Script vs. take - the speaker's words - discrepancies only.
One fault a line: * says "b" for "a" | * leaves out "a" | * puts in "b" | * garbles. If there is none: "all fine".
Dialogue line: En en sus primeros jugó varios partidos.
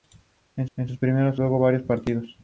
all fine